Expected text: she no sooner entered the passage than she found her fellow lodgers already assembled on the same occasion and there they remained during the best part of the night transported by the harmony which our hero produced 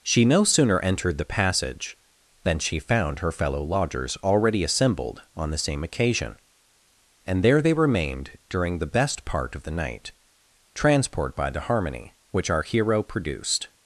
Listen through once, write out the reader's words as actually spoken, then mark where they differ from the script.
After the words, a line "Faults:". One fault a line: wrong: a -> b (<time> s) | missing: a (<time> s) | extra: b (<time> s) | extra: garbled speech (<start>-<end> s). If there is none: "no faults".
she no sooner entered the passage than she found her fellow lodgers already assembled on the same occasion and there they remained during the best part of the night transport by the harmony which our hero produced
Faults:
wrong: transported -> transport (10.7 s)